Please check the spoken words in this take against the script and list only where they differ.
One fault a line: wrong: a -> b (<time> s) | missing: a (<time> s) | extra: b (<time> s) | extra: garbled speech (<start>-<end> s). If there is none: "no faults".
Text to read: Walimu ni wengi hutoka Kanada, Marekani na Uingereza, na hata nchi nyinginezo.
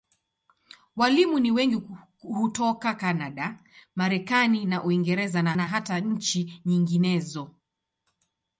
extra: na (5.5 s)